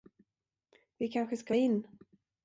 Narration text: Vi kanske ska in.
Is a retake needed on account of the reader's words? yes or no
no